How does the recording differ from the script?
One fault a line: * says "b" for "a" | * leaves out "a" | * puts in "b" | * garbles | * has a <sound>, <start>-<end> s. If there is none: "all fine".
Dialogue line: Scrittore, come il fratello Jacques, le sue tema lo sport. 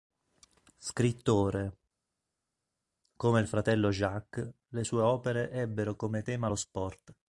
* puts in "opere ebbero come"